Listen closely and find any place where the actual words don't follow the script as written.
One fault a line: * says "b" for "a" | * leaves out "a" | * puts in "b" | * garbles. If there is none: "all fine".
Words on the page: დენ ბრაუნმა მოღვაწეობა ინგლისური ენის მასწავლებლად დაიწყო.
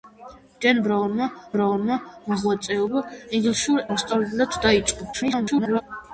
* puts in "ბრაუნმა"
* leaves out "ენის"
* garbles